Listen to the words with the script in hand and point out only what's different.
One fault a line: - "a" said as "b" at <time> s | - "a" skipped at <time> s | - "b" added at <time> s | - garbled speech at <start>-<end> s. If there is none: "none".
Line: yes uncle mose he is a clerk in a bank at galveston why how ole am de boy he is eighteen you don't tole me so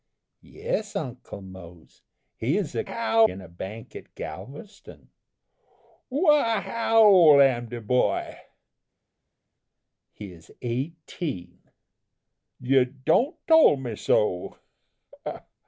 - "clerk" said as "how" at 2.8 s